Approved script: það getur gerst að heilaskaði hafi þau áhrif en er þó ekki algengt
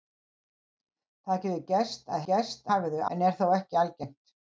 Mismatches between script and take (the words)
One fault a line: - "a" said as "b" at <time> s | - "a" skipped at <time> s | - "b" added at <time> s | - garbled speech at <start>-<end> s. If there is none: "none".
- "heilaskaði" said as "gerst" at 2.3 s
- "áhrif" skipped at 3.0 s